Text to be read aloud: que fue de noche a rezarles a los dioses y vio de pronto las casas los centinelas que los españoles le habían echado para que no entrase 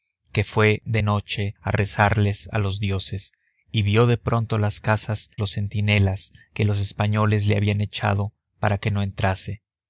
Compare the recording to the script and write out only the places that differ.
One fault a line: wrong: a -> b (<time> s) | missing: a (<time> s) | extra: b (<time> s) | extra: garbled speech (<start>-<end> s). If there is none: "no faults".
no faults